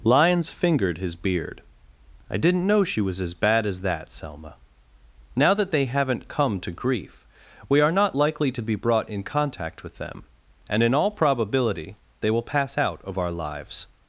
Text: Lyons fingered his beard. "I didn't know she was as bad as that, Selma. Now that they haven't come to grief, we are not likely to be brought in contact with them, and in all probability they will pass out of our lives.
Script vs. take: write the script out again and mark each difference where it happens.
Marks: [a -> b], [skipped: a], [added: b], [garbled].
Lyons fingered his beard. "I didn't know she was as bad as that, Selma. Now that they haven't come to grief, we are not likely to be brought in contact with them, and in all probability they will pass out of our lives.